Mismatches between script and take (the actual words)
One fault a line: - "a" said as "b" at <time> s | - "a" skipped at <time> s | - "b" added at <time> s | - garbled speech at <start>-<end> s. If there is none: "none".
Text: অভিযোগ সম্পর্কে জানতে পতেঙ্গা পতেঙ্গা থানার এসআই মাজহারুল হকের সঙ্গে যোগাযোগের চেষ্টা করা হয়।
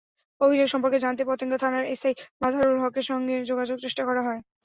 - "পতেঙ্গা" skipped at 1.6 s